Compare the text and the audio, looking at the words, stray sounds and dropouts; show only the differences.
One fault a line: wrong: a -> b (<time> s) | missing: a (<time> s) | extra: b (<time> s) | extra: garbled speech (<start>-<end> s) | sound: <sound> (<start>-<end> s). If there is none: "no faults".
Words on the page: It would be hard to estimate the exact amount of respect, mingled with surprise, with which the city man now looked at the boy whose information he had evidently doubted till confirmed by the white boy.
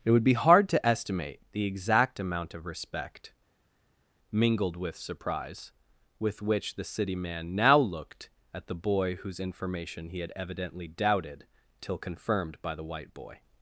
no faults